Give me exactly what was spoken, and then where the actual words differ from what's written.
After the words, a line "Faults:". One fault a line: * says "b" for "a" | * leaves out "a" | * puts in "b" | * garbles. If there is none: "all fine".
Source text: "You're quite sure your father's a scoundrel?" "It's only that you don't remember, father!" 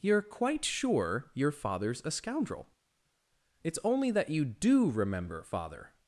"You're quite sure your father's a scoundrel?" "It's only that you do remember, father!"
Faults:
* says "do" for "don't"